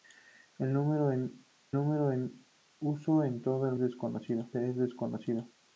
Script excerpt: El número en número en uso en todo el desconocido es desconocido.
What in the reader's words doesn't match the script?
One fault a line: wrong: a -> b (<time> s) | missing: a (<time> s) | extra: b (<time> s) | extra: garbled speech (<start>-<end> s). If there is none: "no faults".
no faults